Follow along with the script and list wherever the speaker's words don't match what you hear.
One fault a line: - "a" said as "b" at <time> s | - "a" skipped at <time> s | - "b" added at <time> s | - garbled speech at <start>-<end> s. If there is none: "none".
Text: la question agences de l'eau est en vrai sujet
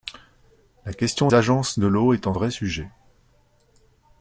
none